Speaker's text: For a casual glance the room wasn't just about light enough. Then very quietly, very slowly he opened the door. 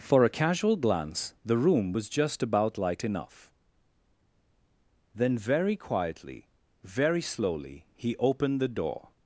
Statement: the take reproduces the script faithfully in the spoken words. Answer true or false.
false